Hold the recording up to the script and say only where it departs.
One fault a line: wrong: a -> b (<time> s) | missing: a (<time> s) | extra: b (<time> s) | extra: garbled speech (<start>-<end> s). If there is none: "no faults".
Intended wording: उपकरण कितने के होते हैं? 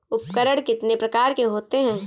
extra: प्रकार (0.9 s)